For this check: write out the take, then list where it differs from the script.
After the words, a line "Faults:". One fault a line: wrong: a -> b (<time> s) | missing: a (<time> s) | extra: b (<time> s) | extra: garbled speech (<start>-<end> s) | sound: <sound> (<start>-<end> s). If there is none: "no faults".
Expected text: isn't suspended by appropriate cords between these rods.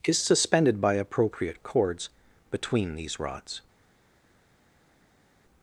is suspended by appropriate cords between these rods.
Faults:
wrong: isn't -> is (0.1 s)